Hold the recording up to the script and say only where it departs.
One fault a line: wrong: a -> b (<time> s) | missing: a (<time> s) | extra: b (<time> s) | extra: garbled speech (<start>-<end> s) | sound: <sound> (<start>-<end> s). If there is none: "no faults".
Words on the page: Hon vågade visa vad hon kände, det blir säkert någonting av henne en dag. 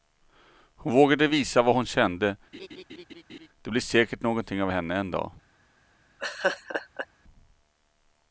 sound: laugh (2.5-3.5 s)
sound: laugh (6.2-7.1 s)